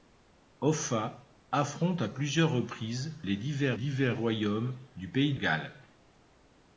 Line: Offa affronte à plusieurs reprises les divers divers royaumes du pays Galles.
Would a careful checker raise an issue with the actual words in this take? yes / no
no